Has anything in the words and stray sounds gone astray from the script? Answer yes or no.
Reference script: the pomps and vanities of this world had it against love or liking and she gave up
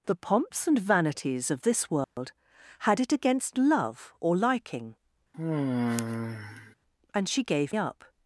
yes